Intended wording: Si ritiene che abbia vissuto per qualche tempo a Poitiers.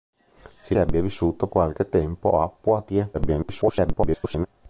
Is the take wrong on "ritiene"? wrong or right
wrong